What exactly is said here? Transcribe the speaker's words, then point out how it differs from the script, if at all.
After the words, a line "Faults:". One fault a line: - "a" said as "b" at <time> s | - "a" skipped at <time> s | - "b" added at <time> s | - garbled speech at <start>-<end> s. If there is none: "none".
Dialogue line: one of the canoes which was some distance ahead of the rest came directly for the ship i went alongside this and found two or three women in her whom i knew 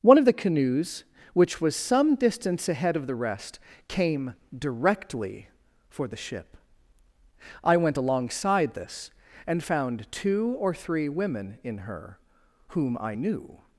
one of the canoes which was some distance ahead of the rest came directly for the ship i went alongside this and found two or three women in her whom i knew
Faults:
none